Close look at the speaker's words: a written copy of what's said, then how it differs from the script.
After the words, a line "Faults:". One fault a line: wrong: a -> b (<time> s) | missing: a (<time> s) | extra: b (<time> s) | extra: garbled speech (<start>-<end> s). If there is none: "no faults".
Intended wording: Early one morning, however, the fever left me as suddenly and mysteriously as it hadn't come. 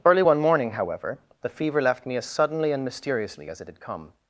Early one morning, however, the fever left me as suddenly and mysteriously as it had come.
Faults:
wrong: hadn't -> had (3.7 s)